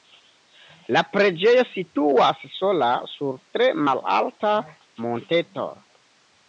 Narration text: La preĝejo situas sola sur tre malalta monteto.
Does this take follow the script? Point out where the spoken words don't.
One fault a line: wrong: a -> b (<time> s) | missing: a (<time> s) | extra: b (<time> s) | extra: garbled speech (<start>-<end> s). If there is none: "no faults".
no faults